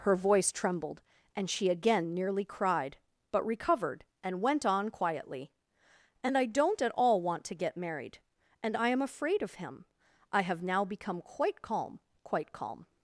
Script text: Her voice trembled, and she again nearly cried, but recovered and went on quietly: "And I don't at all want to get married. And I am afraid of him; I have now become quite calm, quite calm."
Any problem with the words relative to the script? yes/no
no